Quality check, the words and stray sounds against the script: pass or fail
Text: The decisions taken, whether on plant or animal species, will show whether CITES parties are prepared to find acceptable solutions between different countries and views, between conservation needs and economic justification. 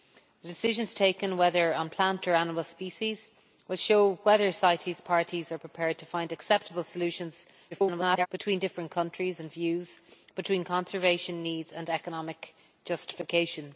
fail